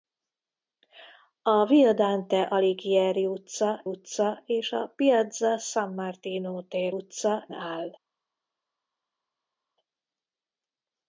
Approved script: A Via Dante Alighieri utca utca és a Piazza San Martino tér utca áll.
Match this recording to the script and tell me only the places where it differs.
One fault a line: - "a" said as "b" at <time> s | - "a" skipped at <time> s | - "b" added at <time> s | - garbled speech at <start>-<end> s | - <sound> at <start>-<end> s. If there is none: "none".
none